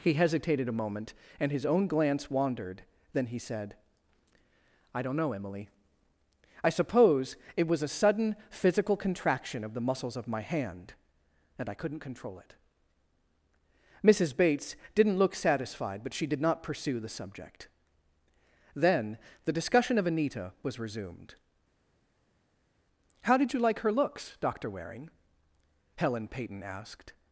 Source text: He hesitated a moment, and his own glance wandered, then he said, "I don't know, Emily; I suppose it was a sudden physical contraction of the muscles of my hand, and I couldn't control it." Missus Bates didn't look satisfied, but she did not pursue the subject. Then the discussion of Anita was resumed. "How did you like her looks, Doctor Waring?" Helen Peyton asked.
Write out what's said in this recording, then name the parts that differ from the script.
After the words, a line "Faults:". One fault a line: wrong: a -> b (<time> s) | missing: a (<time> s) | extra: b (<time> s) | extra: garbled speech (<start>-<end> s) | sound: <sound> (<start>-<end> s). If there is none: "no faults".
He hesitated a moment, and his own glance wandered, then he said, "I don't know, Emily; I suppose it was a sudden physical contraction of the muscles of my hand, and I couldn't control it." Missus Bates didn't look satisfied, but she did not pursue the subject. Then the discussion of Anita was resumed. "How did you like her looks, Doctor Waring?" Helen Peyton asked.
Faults:
no faults